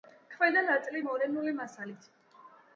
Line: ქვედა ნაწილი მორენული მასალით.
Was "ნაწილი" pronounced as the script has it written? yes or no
yes